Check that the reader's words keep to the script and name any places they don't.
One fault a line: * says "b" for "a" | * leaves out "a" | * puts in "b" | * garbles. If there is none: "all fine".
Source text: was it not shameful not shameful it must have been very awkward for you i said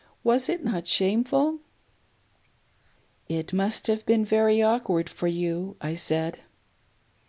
* leaves out "not shameful"